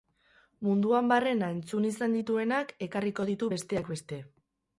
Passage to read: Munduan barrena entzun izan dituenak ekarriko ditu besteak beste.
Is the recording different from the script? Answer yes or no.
no